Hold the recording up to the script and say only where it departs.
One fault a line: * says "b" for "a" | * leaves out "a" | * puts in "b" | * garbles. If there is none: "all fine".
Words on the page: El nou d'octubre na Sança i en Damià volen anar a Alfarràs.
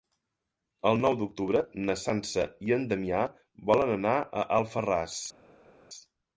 all fine